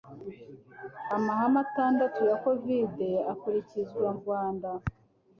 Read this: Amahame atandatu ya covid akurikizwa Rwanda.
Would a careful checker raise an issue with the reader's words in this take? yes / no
no